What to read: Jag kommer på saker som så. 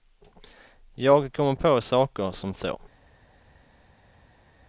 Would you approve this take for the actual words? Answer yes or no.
yes